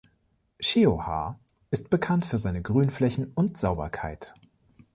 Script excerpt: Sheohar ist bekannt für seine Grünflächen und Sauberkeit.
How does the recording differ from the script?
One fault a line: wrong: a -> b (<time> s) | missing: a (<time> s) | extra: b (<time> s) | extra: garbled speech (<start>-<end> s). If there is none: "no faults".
no faults